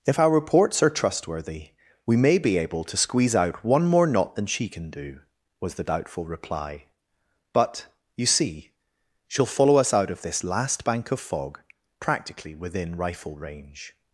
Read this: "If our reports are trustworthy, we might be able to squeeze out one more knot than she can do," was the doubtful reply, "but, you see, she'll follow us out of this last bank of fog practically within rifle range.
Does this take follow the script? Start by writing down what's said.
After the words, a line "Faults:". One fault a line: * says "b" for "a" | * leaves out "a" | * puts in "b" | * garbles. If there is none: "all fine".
"If our reports are trustworthy, we may be able to squeeze out one more knot than she can do," was the doubtful reply, "but, you see, she'll follow us out of this last bank of fog practically within rifle range.
Faults:
* says "may" for "might"